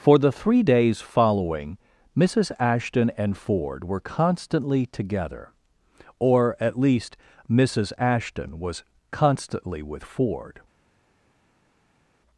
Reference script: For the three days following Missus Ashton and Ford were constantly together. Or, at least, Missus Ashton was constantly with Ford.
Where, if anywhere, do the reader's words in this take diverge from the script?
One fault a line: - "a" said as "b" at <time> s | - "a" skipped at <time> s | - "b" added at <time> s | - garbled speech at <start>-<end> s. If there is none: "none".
none